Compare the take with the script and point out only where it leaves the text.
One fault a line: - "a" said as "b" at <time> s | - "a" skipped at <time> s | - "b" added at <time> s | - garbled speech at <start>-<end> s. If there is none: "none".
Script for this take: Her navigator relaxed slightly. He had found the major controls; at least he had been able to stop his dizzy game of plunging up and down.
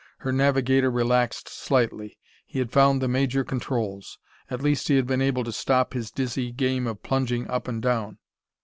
none